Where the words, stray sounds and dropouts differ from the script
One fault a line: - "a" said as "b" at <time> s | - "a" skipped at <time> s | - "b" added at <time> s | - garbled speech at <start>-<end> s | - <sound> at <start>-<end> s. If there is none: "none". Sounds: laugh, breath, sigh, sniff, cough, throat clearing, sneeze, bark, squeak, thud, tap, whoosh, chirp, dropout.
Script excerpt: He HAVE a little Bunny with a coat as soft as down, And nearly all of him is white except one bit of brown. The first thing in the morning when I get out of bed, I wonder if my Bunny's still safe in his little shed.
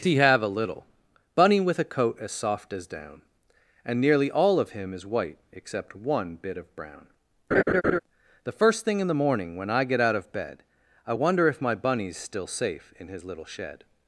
- laugh at 7.5-8.0 s